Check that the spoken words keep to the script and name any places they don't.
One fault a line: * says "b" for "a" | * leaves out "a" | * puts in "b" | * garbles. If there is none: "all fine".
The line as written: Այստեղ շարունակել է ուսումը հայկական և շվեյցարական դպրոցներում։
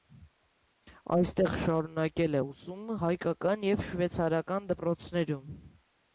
all fine